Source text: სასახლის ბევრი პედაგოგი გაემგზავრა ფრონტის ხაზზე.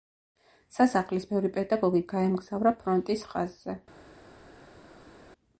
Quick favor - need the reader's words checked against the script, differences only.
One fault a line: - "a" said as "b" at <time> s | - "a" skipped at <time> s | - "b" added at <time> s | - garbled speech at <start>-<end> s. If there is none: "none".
none